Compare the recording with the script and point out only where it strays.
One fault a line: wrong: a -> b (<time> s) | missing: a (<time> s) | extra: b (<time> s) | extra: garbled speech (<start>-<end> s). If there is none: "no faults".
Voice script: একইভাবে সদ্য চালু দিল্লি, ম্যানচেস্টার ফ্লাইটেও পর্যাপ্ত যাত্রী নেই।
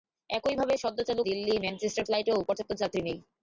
no faults